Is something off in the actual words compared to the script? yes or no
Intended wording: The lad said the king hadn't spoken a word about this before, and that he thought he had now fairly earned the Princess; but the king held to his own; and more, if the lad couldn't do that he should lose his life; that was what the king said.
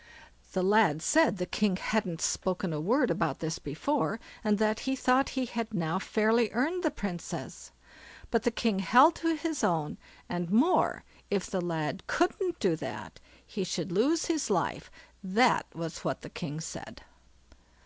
no